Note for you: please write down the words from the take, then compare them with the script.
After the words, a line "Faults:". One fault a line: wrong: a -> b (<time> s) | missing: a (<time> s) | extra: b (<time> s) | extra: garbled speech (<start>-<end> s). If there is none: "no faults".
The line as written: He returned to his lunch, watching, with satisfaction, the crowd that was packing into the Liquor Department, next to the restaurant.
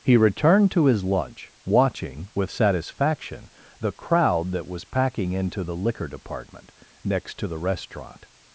He returned to his lunch, watching, with satisfaction, the crowd that was packing into the Liquor Department, next to the restaurant.
Faults:
no faults